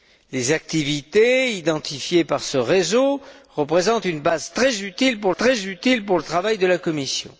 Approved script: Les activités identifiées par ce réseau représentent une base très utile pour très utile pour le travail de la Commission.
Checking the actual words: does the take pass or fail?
pass